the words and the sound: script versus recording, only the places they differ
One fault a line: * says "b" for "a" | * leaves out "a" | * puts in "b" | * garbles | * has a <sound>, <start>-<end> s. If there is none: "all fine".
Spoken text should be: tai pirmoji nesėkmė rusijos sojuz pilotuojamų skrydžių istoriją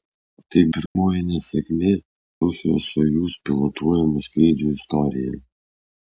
* has a dropout, 0.9-1.0 s